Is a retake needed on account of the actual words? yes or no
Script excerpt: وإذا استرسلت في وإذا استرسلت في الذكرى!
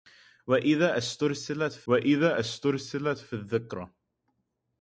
no